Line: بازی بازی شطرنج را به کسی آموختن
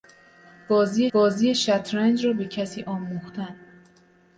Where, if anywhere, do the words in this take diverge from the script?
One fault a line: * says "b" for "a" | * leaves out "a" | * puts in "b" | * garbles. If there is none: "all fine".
all fine